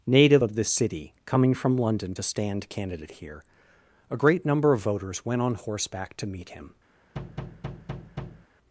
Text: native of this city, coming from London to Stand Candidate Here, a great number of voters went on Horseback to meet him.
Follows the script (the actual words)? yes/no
yes